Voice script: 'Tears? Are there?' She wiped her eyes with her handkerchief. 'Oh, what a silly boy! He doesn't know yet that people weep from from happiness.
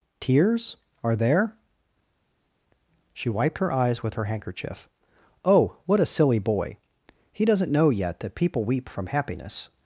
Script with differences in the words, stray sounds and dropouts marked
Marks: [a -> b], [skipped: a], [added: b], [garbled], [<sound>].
'Tears? Are there?' She wiped her eyes with her handkerchief. 'Oh, what a silly boy! He doesn't know yet that people weep from [skipped: from] happiness.